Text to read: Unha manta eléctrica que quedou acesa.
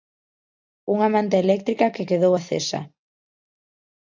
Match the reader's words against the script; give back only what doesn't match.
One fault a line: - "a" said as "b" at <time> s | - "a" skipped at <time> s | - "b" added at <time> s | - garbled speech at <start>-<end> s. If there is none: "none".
none